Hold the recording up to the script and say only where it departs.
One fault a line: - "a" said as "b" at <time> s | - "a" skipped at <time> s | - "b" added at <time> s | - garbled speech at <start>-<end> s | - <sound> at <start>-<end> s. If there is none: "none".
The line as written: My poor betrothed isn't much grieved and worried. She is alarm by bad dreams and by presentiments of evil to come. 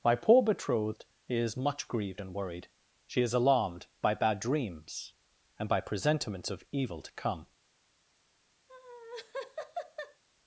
- "isn't" said as "is" at 1.3 s
- "alarm" said as "alarmed" at 3.3 s
- laugh at 8.7-10.2 s